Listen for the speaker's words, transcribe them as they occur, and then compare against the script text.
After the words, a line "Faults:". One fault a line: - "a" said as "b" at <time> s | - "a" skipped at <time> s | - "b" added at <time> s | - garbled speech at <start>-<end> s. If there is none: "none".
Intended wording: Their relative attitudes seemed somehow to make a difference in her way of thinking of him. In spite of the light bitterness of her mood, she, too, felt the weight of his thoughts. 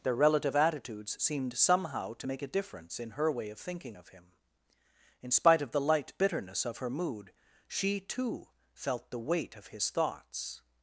Their relative attitudes seemed somehow to make a difference in her way of thinking of him. In spite of the light bitterness of her mood, she, too, felt the weight of his thoughts.
Faults:
none